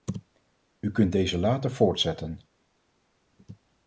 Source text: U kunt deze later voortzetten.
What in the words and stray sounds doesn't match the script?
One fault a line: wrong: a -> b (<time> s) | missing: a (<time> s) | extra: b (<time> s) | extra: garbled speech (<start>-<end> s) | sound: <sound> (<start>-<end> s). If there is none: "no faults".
no faults